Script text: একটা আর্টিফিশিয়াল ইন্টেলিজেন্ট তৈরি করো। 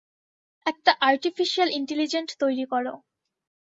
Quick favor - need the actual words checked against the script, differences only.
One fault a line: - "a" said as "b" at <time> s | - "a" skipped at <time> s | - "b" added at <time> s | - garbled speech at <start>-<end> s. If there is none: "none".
none